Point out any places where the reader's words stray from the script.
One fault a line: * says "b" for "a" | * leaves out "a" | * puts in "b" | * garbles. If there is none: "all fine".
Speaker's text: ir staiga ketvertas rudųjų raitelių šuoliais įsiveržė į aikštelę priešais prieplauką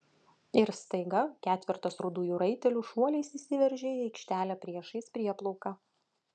all fine